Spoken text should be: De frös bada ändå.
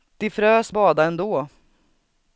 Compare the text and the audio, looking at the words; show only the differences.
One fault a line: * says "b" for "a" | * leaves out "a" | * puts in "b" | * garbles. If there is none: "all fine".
all fine